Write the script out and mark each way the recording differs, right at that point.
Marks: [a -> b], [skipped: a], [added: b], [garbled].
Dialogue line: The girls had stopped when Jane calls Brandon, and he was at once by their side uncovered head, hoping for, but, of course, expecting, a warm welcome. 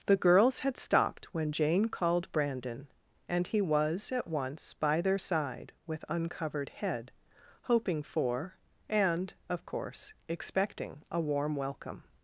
The girls had stopped when Jane [calls -> called] Brandon, and he was at once by their side [added: with] uncovered head, hoping for, [but, -> and] of course, expecting, a warm welcome.